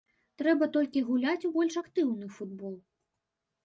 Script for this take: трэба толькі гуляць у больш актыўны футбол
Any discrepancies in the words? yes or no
no